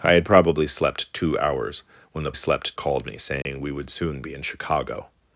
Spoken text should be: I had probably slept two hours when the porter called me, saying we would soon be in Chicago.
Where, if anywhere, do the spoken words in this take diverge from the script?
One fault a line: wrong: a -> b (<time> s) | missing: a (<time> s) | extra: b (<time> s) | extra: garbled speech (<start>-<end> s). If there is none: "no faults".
wrong: porter -> slept (2.3 s)